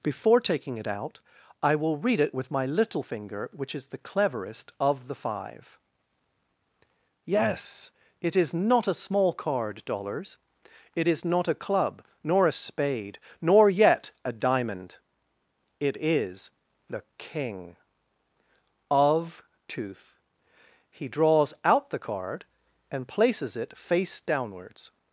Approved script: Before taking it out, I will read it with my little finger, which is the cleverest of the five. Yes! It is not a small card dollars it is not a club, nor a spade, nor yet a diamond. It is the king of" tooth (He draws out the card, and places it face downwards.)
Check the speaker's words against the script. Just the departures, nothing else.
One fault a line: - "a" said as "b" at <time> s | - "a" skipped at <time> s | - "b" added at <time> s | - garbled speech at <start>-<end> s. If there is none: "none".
none